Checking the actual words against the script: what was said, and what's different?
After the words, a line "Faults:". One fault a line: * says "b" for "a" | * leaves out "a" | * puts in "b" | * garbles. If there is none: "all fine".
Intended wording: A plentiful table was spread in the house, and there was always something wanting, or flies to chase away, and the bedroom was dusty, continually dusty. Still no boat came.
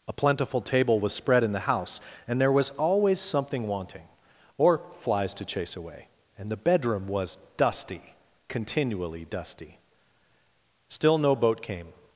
A plentiful table was spread in the house, and there was always something wanting, or flies to chase away, and the bedroom was dusty, continually dusty. Still no boat came.
Faults:
all fine